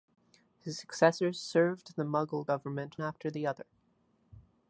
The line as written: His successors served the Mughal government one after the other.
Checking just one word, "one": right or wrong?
wrong